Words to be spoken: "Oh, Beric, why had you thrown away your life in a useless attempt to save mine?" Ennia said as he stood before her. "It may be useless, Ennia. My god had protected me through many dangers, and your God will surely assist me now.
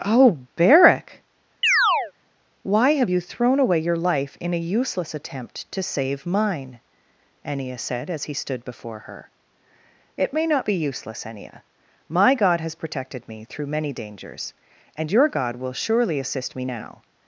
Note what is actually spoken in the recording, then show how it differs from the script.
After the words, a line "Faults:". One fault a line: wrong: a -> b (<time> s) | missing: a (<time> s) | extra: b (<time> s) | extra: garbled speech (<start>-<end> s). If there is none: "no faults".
"Oh, Beric, why have you thrown away your life in a useless attempt to save mine?" Ennia said as he stood before her. "It may not be useless, Ennia. My god has protected me through many dangers, and your God will surely assist me now.
Faults:
wrong: had -> have (2.9 s)
extra: not (10.5 s)
wrong: had -> has (12.6 s)